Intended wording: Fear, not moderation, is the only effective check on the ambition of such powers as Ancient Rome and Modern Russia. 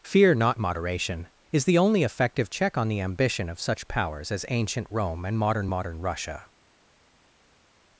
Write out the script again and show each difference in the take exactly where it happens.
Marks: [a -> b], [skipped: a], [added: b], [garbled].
Fear, not moderation, is the only effective check on the ambition of such powers as Ancient Rome and Modern [added: Modern] Russia.